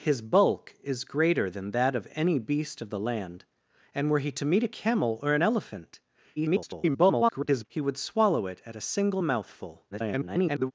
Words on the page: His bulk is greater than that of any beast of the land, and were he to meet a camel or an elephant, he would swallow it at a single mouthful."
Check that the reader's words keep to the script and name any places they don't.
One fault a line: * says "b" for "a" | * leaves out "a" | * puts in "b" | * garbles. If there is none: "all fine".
* garbles
* garbles